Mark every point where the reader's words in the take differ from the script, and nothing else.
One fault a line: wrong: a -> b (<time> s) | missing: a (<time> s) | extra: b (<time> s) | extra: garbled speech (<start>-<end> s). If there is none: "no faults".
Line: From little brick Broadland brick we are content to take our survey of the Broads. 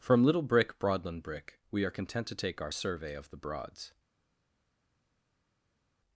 no faults